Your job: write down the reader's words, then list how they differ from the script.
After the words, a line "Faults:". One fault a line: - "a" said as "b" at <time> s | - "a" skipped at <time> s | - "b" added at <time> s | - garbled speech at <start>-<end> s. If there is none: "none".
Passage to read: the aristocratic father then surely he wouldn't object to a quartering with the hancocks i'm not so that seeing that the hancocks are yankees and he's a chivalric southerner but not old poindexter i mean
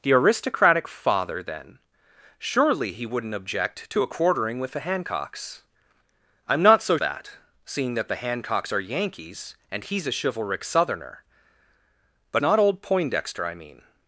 the aristocratic father then surely he wouldn't object to a quartering with the hancocks i'm not so that seeing that the hancocks are yankees and he's a chivalric southerner but not old poindexter i mean
Faults:
none